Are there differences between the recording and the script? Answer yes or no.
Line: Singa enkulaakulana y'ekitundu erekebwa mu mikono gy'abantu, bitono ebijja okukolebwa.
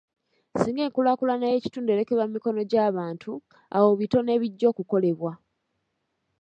yes